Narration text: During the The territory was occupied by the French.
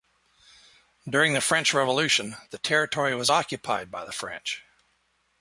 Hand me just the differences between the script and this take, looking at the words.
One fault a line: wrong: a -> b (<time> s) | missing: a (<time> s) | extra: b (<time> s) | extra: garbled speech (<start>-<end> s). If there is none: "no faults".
extra: French Revolution (1.4 s)